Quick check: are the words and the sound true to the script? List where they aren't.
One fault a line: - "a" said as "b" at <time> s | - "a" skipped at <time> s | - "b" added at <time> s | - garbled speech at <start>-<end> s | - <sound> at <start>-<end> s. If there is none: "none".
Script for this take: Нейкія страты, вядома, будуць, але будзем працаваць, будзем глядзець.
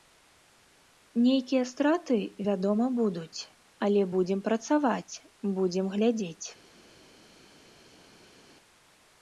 none